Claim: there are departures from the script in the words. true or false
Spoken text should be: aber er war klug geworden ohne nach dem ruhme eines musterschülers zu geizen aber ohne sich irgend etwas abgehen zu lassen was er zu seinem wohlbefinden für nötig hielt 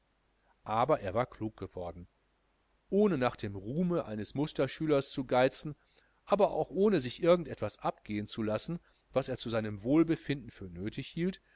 true